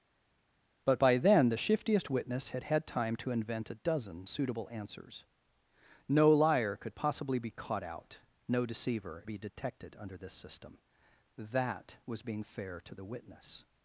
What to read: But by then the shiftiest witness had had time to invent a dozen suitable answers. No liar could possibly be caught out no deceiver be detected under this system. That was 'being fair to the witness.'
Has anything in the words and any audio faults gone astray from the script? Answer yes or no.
no